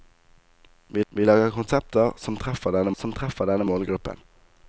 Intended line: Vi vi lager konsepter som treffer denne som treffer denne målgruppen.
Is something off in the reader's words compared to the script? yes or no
no